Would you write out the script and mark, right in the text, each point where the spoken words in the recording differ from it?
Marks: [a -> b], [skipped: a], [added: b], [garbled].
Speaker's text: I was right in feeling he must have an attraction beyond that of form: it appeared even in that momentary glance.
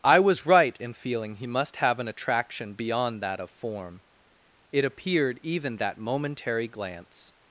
I was right in feeling he must have an attraction beyond that of form: it appeared even [skipped: in] that momentary glance.